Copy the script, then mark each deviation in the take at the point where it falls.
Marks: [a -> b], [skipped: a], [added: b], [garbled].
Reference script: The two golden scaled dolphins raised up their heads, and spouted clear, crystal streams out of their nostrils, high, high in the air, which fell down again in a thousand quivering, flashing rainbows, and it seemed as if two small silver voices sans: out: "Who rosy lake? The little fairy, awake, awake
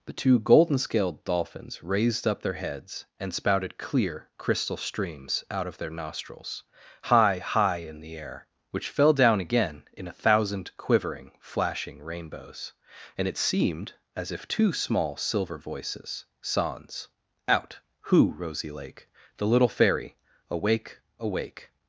The two golden scaled dolphins raised up their heads, and spouted clear, crystal streams out of their nostrils, high, high in the air, which fell down again in a thousand quivering, flashing rainbows, and it seemed as if two small silver voices sans: out: "Who rosy lake? The little fairy, awake, awake